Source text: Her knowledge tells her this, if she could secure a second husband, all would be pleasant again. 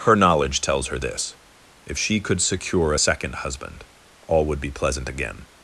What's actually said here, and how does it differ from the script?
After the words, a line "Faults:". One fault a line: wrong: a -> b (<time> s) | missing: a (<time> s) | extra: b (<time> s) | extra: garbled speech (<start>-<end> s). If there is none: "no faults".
Her knowledge tells her this, if she could secure a second husband, all would be pleasant again.
Faults:
no faults